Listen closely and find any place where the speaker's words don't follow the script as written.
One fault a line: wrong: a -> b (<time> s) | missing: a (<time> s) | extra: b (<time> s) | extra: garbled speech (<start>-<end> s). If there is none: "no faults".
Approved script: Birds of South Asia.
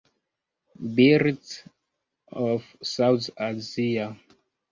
no faults